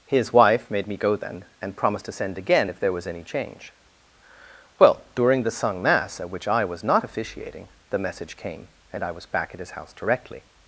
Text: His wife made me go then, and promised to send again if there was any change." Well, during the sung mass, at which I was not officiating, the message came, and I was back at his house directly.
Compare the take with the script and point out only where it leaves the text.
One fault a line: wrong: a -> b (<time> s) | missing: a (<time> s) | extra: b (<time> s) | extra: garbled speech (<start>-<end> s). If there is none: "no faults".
no faults